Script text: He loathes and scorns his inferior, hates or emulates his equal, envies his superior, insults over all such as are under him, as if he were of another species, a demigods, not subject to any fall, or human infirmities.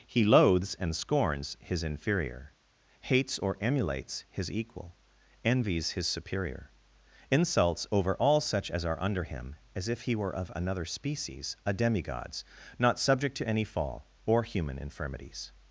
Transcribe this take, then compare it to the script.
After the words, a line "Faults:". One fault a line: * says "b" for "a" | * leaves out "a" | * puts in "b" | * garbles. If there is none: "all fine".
He loathes and scorns his inferior, hates or emulates his equal, envies his superior, insults over all such as are under him, as if he were of another species, a demigods, not subject to any fall, or human infirmities.
Faults:
all fine